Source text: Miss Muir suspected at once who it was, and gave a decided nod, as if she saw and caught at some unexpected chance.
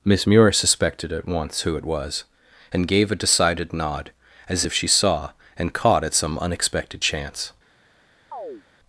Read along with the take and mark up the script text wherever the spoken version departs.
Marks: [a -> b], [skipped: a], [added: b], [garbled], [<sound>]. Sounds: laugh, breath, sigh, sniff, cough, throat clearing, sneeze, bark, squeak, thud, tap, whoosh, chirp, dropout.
Miss Muir suspected at once who it was, and gave a decided nod, as if she saw and caught at some unexpected chance. [chirp]